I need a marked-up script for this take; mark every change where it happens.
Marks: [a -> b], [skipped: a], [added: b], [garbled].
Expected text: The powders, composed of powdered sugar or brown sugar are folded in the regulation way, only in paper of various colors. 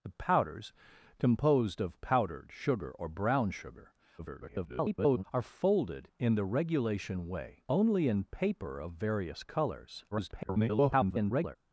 The powders, composed of powdered sugar or brown sugar [garbled] are folded in the regulation way, only in paper of various colors. [garbled]